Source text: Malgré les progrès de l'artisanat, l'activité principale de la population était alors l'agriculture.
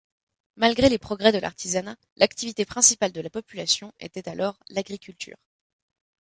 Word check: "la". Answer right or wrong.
right